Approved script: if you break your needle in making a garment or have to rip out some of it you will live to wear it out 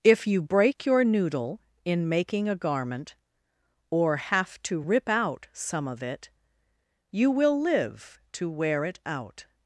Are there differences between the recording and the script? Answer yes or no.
yes